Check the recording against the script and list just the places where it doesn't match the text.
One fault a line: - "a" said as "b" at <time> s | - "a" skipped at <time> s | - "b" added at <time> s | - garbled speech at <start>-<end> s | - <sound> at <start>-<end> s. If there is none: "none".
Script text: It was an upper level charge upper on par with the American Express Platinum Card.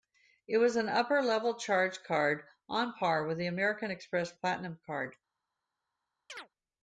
- "upper" said as "card" at 2.0 s
- chirp at 6.3-6.5 s